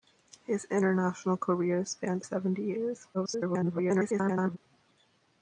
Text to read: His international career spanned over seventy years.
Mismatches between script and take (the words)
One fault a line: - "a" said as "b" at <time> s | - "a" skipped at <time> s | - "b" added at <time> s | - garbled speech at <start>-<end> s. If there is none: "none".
- "over" skipped at 2.2 s
- garbled speech at 3.1-4.6 s